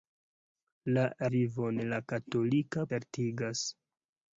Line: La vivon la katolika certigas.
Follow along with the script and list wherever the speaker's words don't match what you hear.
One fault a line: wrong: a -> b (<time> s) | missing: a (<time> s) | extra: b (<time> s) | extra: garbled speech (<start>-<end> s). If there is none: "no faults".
no faults